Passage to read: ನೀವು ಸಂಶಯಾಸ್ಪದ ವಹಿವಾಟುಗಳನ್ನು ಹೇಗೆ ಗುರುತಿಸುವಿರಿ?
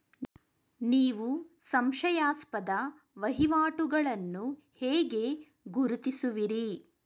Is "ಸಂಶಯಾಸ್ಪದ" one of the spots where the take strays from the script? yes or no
no